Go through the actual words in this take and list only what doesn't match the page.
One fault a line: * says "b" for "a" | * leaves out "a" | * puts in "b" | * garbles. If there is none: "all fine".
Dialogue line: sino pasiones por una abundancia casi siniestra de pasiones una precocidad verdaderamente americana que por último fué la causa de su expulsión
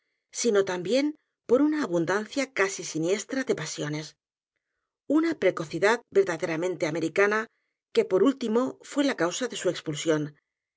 * says "también" for "pasiones"